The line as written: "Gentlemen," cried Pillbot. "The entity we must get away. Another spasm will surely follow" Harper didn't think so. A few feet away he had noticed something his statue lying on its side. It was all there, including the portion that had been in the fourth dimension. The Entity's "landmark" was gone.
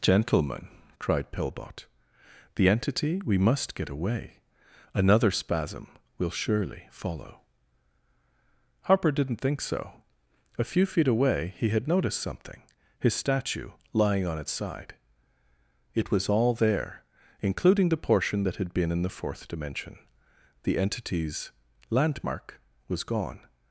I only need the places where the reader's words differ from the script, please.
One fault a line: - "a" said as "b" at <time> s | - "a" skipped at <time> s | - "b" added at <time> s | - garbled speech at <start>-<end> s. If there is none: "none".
none